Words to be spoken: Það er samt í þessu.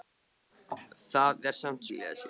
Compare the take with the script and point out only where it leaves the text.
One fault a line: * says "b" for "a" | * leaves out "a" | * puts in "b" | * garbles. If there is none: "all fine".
all fine